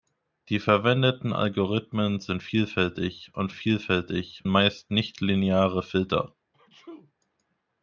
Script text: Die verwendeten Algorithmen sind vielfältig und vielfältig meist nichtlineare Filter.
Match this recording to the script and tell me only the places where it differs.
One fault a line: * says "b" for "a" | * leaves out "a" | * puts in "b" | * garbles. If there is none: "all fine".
all fine